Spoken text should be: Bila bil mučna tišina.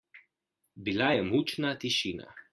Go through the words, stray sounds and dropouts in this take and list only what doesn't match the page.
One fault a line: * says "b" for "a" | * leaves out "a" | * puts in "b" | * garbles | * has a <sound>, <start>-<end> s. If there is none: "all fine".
* says "je" for "bil"